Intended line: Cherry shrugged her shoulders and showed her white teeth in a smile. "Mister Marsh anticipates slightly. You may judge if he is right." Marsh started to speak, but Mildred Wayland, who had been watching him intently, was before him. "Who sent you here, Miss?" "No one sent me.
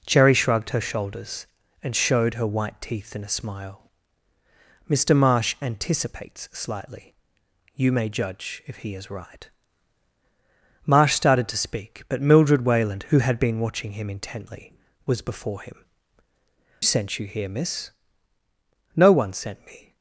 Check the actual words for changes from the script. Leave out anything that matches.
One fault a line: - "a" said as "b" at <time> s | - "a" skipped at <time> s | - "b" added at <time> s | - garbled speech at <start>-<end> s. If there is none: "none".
- "Who" skipped at 15.8 s